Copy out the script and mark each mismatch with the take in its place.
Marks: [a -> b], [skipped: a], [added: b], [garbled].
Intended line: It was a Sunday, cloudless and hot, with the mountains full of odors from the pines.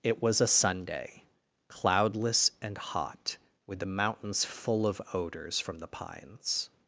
It was a Sunday, cloudless and hot, with the mountains full of odors from the pines.